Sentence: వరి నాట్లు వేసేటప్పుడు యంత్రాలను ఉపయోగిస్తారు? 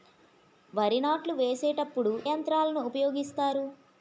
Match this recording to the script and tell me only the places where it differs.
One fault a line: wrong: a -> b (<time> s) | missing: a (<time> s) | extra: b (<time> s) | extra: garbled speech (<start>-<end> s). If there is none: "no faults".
no faults